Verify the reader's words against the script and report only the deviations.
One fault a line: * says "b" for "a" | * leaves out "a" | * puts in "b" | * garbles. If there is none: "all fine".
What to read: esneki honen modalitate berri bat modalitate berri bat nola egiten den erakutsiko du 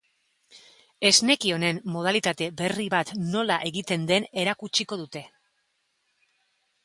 * leaves out "modalitate berri bat"
* says "dute" for "du"